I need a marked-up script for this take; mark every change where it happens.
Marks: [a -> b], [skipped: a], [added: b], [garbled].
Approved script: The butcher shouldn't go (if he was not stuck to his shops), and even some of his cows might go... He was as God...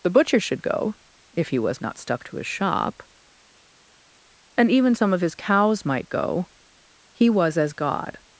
The butcher [shouldn't -> should] go (if he was not stuck to his [shops), -> shop] and even some of his cows might go... He was as God...